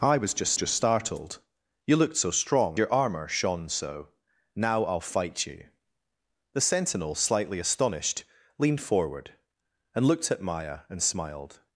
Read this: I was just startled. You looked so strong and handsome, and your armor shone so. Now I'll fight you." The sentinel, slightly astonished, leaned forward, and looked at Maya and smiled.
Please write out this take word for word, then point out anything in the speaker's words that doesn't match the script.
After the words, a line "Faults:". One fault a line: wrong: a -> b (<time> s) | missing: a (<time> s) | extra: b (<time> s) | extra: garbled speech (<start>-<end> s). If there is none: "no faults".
I was just just startled. You looked so strong your armor shone so. Now I'll fight you." The sentinel, slightly astonished, leaned forward, and looked at Maya and smiled.
Faults:
extra: just (0.5 s)
missing: and handsome and (2.8 s)